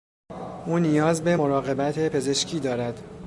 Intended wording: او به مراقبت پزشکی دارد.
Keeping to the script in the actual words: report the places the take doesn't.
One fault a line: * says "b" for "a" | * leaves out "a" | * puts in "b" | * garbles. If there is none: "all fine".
* puts in "نیاز"